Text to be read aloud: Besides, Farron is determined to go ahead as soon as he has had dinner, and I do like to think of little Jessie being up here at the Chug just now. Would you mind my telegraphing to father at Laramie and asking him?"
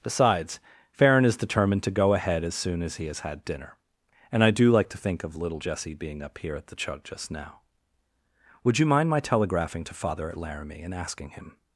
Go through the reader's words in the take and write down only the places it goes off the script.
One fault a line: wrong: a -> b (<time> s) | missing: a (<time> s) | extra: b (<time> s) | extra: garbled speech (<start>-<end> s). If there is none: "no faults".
no faults